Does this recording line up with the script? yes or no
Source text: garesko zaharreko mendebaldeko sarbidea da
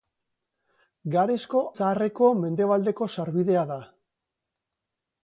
yes